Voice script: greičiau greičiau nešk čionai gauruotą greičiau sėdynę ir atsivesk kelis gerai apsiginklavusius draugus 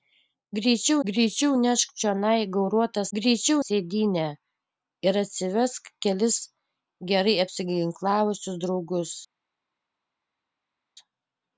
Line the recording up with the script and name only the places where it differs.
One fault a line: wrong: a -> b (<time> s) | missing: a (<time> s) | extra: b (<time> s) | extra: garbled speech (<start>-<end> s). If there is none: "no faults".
no faults